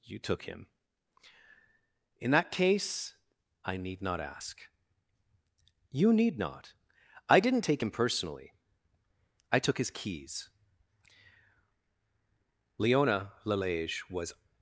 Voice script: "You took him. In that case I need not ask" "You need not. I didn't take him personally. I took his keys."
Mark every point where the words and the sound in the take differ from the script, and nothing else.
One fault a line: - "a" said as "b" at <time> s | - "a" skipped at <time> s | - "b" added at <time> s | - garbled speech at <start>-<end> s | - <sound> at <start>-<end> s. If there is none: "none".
- "Leona Lalage was" added at 12.8 s